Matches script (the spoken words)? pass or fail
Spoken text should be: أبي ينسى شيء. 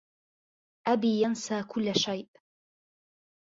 fail